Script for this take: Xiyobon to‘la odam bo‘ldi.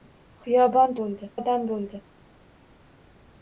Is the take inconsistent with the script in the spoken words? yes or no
yes